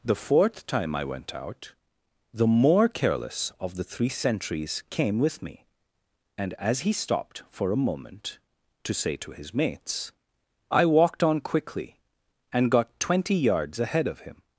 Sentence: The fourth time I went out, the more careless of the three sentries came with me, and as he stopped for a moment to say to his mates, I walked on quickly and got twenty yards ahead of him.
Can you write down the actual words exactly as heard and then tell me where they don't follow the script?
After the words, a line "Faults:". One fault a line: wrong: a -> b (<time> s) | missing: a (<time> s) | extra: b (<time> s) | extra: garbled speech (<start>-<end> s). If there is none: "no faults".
The fourth time I went out, the more careless of the three sentries came with me, and as he stopped for a moment to say to his mates, I walked on quickly and got twenty yards ahead of him.
Faults:
no faults